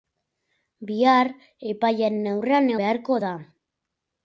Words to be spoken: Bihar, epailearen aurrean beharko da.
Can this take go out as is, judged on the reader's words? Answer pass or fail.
pass